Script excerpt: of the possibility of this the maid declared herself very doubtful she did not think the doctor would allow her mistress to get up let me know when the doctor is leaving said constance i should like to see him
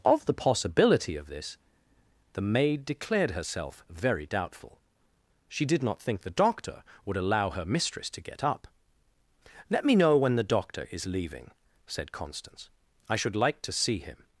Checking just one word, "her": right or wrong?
right